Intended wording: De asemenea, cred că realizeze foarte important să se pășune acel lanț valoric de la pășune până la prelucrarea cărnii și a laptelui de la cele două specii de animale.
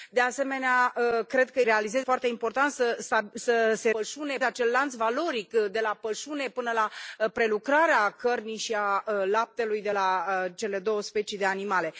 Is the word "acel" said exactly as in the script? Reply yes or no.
yes